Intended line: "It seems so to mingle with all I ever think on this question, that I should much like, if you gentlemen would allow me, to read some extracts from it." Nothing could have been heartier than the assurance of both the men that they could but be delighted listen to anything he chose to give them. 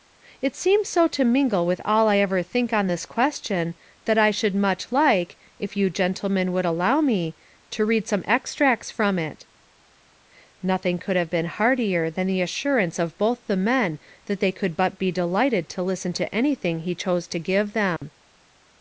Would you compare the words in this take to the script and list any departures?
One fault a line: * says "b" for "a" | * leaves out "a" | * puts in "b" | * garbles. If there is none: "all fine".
* puts in "to"